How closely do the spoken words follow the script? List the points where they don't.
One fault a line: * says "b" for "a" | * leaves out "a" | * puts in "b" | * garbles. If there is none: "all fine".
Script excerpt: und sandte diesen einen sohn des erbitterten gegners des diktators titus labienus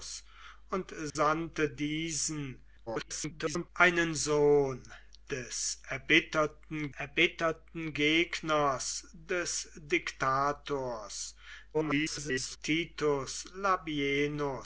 * garbles
* puts in "erbitterten"
* garbles